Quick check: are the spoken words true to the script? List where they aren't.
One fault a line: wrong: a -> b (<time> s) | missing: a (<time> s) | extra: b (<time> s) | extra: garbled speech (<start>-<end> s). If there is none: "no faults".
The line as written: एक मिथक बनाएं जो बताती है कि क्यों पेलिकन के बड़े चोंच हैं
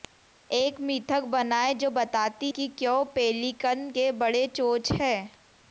missing: है (2.5 s)